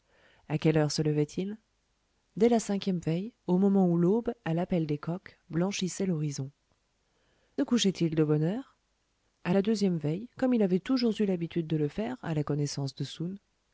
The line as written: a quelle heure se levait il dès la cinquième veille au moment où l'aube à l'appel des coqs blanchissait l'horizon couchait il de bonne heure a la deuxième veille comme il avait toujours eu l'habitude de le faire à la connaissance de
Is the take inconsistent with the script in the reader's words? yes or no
no